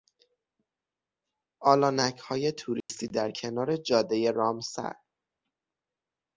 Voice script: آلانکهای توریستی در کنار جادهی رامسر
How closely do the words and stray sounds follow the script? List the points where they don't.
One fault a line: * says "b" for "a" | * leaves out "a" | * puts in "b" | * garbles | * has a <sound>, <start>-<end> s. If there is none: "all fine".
* has a dropout, 2.8-2.9 s